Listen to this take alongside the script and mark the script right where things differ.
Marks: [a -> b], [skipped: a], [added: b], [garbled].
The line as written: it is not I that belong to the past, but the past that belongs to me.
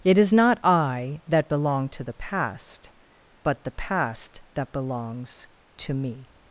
it is not I that belong to the past, but the past that belongs to me.